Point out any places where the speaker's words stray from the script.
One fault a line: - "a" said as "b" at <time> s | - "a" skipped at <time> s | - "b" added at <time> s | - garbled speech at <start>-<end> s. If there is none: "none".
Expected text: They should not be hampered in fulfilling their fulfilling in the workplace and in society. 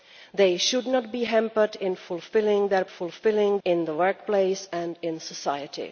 none